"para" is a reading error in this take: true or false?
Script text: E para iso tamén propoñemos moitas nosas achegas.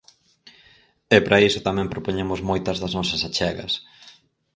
false